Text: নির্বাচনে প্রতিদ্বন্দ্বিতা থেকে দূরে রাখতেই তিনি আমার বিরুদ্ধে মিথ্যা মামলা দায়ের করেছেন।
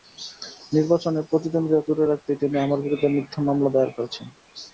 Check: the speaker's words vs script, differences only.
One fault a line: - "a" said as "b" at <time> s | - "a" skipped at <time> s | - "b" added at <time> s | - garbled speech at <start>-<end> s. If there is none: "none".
- "থেকে" skipped at 1.9 s